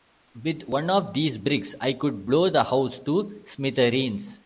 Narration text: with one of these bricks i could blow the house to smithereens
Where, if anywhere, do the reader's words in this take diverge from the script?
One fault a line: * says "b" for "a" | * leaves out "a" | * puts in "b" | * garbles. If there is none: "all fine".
all fine